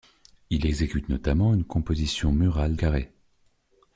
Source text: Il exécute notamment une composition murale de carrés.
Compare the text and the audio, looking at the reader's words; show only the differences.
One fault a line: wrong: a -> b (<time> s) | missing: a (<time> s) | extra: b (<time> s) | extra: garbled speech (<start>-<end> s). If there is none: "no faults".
missing: de (2.8 s)